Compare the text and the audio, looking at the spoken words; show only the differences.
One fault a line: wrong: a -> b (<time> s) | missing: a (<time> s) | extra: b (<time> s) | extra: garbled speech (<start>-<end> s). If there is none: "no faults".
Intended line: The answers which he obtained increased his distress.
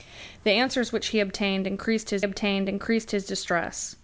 extra: obtained increased his (2.2 s)